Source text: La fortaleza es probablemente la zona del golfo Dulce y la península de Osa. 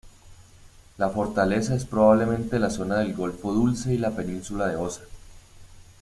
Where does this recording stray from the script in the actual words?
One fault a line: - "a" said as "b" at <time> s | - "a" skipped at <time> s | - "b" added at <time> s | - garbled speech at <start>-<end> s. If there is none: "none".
none